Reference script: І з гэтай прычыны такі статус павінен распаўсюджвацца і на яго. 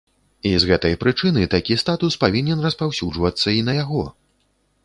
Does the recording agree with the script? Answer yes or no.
yes